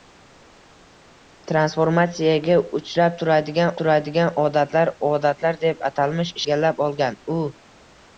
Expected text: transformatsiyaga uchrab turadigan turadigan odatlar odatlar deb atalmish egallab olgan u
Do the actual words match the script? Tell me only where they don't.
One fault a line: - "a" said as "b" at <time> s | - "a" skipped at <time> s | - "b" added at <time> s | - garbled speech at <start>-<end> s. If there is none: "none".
none